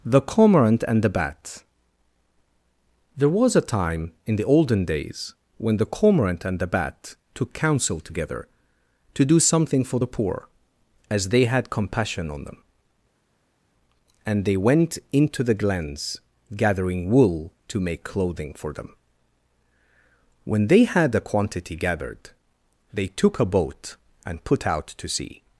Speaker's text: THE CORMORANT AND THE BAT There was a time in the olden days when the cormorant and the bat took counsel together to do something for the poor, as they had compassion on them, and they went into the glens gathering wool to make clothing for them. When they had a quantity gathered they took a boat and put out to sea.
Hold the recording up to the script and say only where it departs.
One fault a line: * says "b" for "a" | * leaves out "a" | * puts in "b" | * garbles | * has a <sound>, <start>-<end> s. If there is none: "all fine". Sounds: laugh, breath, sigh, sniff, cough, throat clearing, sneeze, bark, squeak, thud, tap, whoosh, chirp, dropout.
all fine